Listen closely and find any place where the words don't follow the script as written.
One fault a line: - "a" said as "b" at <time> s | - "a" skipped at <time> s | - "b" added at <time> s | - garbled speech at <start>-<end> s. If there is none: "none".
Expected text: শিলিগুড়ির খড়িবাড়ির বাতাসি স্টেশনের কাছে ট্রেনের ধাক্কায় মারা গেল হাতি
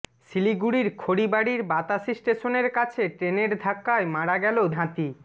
none